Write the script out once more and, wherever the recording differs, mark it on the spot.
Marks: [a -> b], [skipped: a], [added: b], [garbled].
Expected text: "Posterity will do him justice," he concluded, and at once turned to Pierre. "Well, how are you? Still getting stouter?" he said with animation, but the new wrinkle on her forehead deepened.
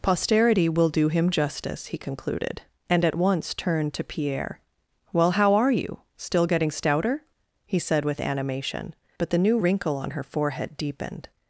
"Posterity will do him justice," he concluded, and at once turned to Pierre. "Well, how are you? Still getting stouter?" he said with animation, but the new wrinkle on her forehead deepened.